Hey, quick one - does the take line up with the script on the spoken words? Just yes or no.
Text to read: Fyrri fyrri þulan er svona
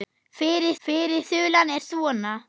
yes